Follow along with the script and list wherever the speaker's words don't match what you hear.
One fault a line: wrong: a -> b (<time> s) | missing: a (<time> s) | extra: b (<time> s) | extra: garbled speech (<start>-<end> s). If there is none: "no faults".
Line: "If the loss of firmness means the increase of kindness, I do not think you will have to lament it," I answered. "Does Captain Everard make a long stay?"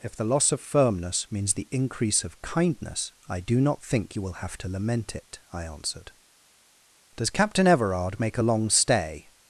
no faults